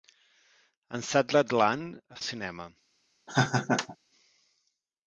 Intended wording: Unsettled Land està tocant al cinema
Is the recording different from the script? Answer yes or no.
yes